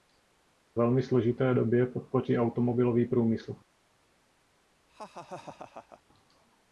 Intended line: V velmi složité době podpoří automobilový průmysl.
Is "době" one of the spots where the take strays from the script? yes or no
no